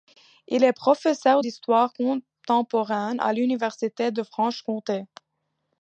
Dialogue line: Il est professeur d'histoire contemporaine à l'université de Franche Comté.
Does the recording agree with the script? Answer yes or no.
yes